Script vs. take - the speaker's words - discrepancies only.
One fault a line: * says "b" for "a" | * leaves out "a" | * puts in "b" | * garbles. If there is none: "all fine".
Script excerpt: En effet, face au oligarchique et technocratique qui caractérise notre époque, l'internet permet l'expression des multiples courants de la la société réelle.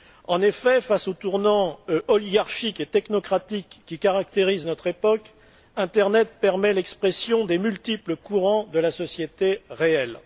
* puts in "tournant"
* leaves out "la"